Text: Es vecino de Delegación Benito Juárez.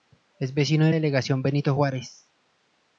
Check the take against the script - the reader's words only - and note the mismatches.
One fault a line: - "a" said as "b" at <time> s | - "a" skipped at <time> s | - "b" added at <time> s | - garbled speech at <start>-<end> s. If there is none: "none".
none